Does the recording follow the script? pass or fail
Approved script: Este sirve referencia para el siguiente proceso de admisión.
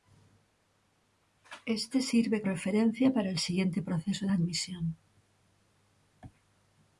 pass